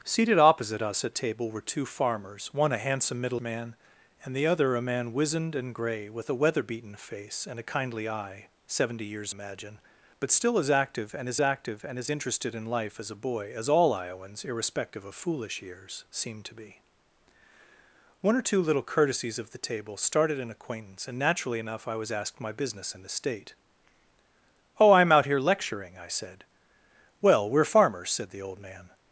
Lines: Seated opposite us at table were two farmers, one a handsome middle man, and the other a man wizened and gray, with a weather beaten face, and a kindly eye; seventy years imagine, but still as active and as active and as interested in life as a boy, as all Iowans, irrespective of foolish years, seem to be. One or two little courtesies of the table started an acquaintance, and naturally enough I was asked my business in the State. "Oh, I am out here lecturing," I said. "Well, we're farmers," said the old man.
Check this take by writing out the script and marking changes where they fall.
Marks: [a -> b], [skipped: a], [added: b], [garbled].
Seated opposite us at table were two farmers, one a handsome middle man, and the other a man wizened and gray, with a weather beaten face, and a kindly eye; seventy years imagine, but still as active and as active and as interested in life as a boy, as all Iowans, irrespective of foolish years, seem to be. One or two little courtesies of the table started an acquaintance, and naturally enough I was asked my business in the State. "Oh, I am out here lecturing," I said. "Well, we're farmers," said the old man.